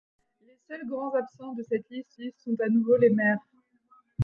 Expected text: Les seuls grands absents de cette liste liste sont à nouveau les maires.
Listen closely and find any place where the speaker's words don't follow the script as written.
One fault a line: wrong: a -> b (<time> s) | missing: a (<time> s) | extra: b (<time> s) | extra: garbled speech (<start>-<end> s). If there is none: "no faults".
no faults